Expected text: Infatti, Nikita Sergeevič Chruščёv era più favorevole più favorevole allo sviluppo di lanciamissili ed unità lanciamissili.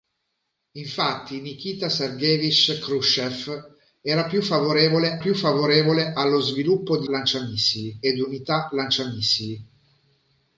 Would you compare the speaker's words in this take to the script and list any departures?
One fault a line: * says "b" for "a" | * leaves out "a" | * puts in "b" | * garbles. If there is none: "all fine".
all fine